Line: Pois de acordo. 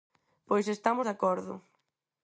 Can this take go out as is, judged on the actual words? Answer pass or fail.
fail